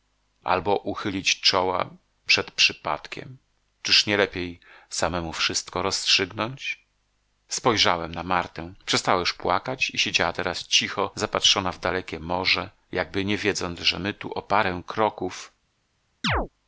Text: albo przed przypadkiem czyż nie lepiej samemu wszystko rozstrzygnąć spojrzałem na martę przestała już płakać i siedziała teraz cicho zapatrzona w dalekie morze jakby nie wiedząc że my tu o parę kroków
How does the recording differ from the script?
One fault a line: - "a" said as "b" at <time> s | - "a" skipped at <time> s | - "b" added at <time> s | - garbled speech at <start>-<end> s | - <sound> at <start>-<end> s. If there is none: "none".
- "uchylić czoła" added at 0.8 s
- chirp at 16.2-16.5 s